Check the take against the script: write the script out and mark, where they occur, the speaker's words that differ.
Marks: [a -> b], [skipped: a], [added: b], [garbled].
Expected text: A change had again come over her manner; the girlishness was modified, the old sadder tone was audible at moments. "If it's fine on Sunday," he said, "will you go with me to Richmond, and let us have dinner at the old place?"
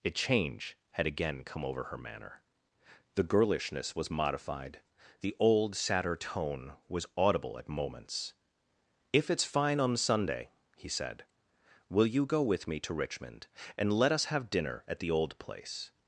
A change had again come over her manner; the girlishness was modified, the old sadder tone was audible at moments. "If it's fine on Sunday," he said, "will you go with me to Richmond, and let us have dinner at the old place?"